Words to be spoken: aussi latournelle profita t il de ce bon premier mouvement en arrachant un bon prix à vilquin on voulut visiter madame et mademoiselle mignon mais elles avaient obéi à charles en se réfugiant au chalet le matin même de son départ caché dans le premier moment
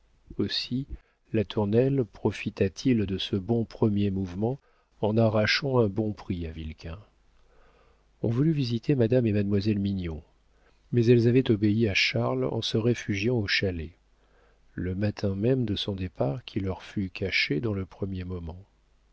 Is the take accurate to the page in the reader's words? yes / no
no